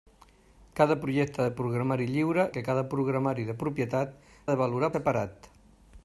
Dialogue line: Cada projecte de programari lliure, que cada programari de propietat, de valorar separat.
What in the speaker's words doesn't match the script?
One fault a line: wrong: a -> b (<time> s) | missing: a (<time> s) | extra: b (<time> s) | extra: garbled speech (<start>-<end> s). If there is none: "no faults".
no faults